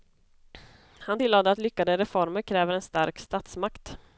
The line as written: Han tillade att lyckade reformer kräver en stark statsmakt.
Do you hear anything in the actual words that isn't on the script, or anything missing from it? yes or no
no